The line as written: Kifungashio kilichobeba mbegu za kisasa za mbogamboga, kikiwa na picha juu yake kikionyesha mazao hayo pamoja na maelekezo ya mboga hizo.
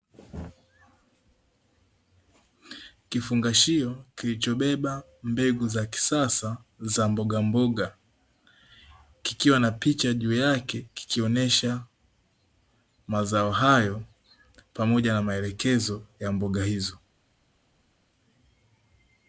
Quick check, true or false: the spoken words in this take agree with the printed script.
true